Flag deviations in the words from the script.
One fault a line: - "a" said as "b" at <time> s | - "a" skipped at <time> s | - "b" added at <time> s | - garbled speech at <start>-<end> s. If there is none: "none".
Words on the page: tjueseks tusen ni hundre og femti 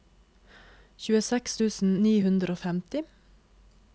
none